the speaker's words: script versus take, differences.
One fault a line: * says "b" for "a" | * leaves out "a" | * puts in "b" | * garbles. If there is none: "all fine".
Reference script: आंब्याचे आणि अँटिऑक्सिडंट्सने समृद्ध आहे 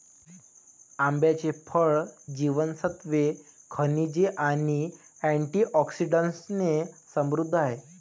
* puts in "फळ जीवनसत्त्वे खनिजे"